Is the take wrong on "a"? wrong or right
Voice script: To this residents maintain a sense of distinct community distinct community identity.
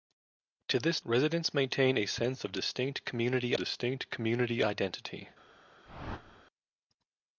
right